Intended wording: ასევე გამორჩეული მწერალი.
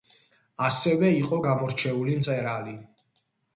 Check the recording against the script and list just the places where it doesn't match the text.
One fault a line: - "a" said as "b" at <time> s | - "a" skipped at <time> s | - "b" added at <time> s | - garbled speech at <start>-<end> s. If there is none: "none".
- "იყო" added at 1.2 s